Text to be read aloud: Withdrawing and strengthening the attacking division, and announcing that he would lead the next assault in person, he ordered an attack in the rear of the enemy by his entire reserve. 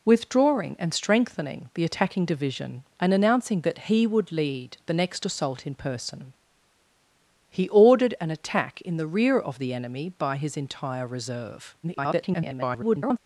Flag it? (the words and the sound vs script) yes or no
yes